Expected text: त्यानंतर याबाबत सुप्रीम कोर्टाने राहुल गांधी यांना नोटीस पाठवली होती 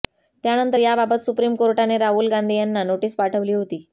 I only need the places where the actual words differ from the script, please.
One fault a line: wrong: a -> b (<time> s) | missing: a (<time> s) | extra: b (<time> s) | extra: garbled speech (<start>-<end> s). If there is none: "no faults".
no faults